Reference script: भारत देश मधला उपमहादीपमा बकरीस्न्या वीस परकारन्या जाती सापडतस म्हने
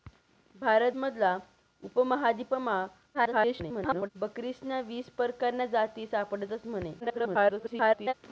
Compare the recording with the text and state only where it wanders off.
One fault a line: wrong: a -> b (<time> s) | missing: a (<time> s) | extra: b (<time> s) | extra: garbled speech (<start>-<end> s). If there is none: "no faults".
missing: देश (0.9 s)
extra: garbled speech (3.1-4.1 s)
extra: garbled speech (7.0-8.1 s)